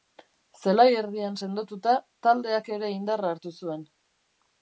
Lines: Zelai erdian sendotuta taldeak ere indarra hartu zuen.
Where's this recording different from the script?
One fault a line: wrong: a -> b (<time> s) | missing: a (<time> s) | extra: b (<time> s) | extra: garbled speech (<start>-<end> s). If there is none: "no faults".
no faults